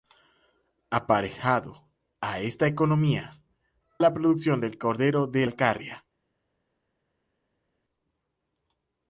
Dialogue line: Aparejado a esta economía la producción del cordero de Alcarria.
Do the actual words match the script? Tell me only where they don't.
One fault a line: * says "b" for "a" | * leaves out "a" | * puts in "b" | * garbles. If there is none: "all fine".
all fine